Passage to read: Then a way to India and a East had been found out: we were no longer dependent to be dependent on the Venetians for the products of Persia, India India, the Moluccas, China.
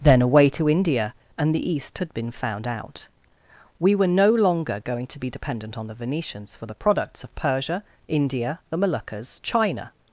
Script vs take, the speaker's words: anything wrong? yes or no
yes